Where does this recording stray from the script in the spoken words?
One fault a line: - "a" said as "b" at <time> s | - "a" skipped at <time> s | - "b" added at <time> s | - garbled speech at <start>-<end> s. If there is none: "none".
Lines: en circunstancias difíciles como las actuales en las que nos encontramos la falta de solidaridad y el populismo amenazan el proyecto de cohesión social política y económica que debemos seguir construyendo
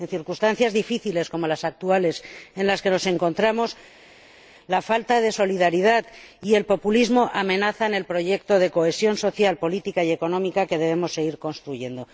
none